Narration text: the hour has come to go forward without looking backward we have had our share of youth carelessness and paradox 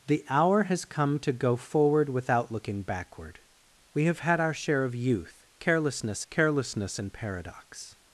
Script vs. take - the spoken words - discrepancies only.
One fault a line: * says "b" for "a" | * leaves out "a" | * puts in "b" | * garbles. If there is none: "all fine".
* puts in "carelessness"